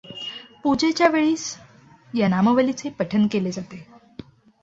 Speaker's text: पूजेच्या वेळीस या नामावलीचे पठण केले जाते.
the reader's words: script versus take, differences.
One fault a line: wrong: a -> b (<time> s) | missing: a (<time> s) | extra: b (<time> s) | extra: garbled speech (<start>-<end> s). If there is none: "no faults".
no faults